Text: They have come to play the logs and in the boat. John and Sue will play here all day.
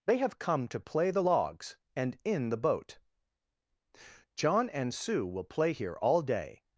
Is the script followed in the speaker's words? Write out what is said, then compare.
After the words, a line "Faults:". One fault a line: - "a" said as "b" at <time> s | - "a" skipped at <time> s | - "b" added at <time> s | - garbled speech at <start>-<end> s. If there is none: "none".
They have come to play the logs and in the boat. John and Sue will play here all day.
Faults:
none